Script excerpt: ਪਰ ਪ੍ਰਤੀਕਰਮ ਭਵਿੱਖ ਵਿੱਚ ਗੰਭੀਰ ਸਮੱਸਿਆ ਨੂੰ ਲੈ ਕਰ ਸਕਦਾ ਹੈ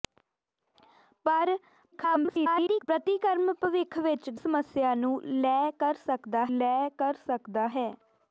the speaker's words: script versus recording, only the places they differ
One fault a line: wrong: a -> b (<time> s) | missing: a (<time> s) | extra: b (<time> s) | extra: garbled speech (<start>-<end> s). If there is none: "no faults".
extra: garbled speech (1.9-2.9 s)
missing: ਗੰਭੀਰ (4.3 s)
extra: ਲੈ ਕਰ ਸਕਦਾ (6.6 s)